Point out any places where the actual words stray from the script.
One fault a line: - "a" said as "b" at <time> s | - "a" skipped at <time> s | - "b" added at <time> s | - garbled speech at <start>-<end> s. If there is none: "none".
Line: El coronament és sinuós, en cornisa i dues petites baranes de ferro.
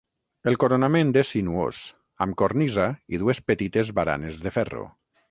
- "en" said as "amb" at 2.2 s